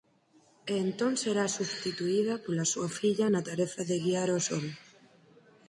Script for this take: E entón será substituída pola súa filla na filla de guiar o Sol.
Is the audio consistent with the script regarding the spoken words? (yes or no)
no